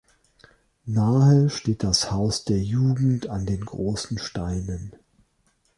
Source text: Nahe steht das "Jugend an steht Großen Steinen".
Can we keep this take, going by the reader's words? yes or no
no